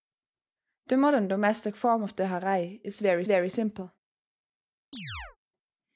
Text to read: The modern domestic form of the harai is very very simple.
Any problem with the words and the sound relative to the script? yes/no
yes